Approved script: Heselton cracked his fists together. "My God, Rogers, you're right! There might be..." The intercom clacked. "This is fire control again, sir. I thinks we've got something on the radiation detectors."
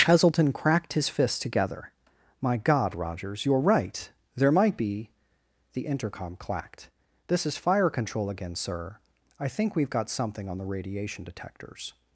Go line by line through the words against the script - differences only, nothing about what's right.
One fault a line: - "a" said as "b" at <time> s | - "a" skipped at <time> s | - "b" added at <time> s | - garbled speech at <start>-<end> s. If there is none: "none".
- "thinks" said as "think" at 9.5 s